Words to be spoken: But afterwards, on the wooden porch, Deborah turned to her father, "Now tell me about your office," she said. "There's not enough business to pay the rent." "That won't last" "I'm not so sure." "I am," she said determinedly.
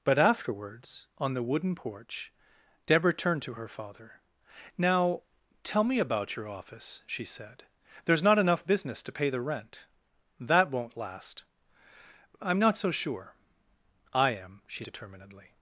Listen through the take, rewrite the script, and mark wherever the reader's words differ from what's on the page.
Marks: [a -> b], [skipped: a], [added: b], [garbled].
But afterwards, on the wooden porch, Deborah turned to her father, "Now tell me about your office," she said. "There's not enough business to pay the rent." "That won't last" "I'm not so sure." "I am," she [skipped: said] determinedly.